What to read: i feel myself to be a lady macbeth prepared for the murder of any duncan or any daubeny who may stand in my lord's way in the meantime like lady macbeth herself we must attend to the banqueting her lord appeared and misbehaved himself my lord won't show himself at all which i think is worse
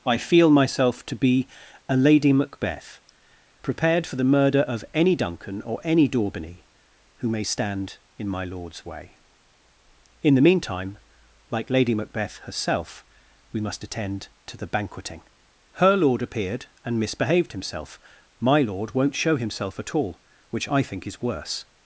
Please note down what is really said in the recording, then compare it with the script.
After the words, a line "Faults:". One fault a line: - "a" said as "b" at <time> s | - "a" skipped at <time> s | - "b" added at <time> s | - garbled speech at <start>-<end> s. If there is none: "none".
i feel myself to be a lady macbeth prepared for the murder of any duncan or any daubeny who may stand in my lord's way in the meantime like lady macbeth herself we must attend to the banqueting her lord appeared and misbehaved himself my lord won't show himself at all which i think is worse
Faults:
none